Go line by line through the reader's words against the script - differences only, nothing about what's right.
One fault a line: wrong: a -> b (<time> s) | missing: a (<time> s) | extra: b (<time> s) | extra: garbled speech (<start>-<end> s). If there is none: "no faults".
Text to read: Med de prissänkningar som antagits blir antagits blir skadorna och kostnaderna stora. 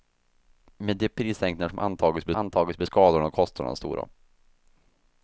no faults